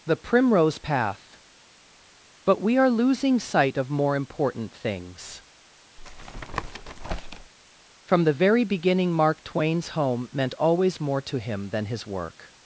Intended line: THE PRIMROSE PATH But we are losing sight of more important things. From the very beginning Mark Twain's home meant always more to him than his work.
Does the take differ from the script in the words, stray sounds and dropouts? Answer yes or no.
yes